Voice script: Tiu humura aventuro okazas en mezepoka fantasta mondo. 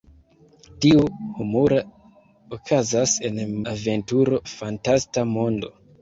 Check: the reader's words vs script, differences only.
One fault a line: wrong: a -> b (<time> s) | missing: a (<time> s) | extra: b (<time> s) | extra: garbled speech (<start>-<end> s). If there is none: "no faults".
missing: aventuro (1.8 s)
wrong: mezepoka -> aventuro (3.7 s)